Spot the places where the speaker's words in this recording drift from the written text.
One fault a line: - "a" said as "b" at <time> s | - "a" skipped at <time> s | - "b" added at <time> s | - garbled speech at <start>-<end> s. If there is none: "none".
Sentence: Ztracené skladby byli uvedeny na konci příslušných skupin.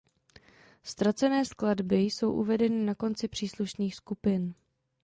- "byli" said as "jsou" at 2.0 s